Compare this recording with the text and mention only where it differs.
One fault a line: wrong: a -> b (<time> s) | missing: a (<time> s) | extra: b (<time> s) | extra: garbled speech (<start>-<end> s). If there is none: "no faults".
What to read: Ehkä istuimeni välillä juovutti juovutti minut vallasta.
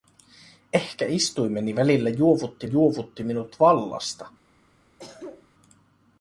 no faults